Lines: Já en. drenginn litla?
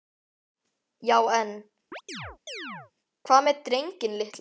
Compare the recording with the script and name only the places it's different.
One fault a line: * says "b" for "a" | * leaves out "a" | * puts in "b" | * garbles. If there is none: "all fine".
* puts in "hvað með"